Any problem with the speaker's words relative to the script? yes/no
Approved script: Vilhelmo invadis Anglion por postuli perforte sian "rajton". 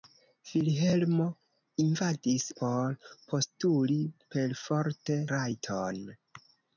yes